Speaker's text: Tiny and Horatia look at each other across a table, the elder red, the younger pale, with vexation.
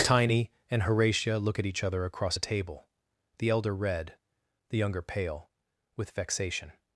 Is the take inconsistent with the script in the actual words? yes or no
no